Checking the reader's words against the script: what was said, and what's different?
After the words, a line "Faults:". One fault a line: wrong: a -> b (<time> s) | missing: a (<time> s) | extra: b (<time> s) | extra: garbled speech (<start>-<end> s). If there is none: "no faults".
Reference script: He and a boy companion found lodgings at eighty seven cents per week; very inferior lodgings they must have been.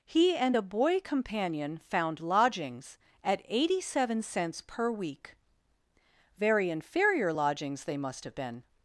He and a boy companion found lodgings at eighty seven cents per week; very inferior lodgings they must have been.
Faults:
no faults